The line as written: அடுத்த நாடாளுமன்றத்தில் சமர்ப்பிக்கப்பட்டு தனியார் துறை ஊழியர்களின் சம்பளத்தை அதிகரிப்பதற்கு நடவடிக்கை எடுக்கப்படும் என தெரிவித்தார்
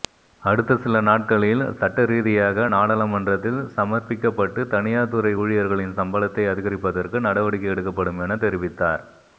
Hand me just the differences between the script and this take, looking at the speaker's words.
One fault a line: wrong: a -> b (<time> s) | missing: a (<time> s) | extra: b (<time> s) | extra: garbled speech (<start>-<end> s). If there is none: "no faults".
extra: சில நாட்களில் சட்டரீதியாக (0.8 s)